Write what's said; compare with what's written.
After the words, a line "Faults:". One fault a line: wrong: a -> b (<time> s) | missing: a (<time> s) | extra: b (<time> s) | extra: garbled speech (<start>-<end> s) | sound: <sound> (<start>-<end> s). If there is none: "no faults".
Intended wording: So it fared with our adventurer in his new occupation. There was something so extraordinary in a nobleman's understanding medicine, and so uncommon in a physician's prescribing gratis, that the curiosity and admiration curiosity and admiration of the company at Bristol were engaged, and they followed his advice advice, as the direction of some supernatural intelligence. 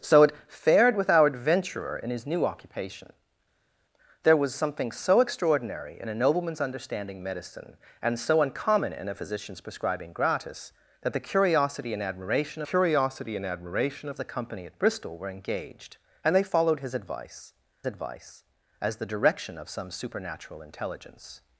So it fared with our adventurer in his new occupation. There was something so extraordinary in a nobleman's understanding medicine, and so uncommon in a physician's prescribing gratis, that the curiosity and admiration curiosity and admiration of the company at Bristol were engaged, and they followed his advice advice, as the direction of some supernatural intelligence.
Faults:
no faults